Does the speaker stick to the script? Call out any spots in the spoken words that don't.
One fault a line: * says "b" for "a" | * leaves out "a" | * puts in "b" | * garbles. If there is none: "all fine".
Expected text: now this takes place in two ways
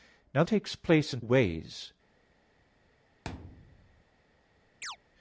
* leaves out "this"
* leaves out "two"